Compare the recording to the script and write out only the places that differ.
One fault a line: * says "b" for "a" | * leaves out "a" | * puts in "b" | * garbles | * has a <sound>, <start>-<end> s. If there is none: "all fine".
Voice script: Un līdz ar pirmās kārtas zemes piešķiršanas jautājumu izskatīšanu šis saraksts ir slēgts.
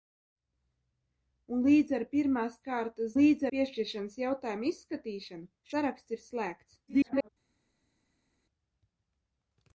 * says "līdz" for "zemes"
* leaves out "šis"
* garbles